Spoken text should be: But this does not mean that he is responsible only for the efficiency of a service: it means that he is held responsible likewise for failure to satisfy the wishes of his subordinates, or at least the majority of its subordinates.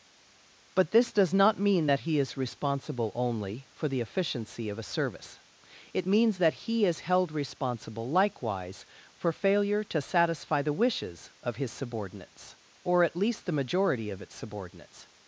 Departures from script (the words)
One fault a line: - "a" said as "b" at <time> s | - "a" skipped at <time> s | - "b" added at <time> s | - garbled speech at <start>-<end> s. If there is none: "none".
none